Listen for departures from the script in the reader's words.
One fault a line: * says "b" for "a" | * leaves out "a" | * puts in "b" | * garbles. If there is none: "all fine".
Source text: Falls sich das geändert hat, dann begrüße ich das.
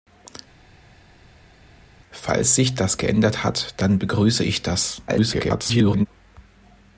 * garbles